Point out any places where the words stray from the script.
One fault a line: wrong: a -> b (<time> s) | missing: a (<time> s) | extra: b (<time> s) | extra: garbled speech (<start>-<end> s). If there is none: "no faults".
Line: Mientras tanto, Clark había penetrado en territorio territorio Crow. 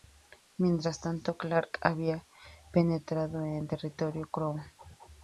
missing: territorio (4.3 s)